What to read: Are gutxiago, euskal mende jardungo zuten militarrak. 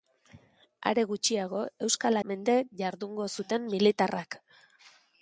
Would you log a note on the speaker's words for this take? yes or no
no